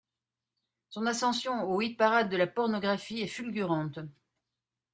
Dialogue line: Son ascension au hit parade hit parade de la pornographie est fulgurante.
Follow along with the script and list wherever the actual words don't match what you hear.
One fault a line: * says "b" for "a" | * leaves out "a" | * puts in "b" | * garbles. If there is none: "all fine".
* leaves out "hit parade"